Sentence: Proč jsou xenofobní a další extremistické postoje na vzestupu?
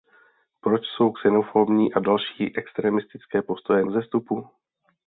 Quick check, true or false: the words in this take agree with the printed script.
false